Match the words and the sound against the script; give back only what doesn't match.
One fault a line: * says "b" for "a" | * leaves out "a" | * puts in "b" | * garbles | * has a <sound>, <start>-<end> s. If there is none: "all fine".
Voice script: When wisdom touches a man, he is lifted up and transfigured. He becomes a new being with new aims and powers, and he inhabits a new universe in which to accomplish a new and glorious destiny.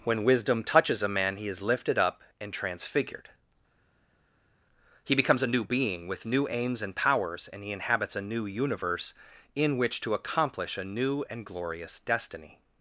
all fine